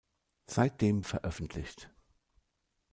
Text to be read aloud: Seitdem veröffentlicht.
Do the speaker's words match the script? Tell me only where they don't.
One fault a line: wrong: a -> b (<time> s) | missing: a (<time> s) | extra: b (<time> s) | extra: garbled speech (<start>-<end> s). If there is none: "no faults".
no faults